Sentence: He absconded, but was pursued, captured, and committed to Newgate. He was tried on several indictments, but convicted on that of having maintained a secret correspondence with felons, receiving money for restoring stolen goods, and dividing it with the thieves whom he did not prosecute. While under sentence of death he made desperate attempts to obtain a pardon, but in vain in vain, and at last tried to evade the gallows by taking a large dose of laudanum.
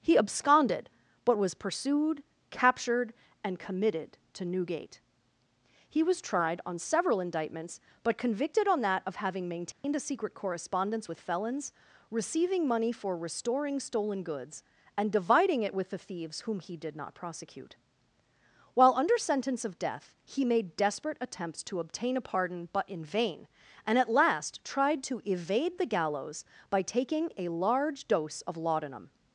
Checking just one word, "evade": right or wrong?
right